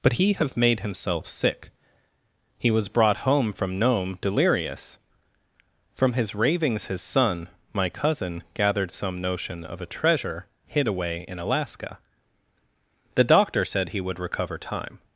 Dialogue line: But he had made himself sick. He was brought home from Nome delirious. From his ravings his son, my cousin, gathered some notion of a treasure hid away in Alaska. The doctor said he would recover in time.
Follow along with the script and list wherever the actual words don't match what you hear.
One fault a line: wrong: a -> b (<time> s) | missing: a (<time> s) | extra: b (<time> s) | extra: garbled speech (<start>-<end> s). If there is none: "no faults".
wrong: had -> have (0.3 s)
missing: in (14.6 s)